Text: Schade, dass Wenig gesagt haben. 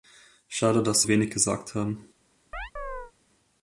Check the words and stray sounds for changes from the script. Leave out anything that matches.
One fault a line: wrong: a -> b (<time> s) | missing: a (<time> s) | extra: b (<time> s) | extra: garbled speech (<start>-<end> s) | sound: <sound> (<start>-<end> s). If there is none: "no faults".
sound: chirp (2.5-3.1 s)